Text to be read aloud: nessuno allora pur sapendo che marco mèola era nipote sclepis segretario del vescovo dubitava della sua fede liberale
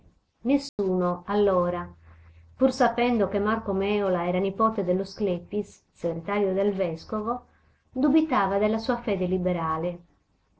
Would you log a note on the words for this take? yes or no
yes